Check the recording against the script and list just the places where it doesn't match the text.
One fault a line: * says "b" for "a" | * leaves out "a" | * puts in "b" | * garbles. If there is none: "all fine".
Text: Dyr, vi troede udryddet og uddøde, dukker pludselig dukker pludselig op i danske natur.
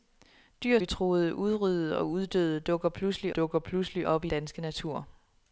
all fine